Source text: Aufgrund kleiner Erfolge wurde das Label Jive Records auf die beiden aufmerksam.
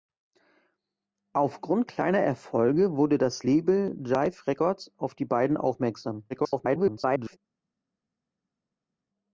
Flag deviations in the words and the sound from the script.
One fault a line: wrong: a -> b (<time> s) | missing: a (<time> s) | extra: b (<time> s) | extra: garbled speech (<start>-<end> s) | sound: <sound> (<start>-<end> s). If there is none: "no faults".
extra: garbled speech (6.3-7.4 s)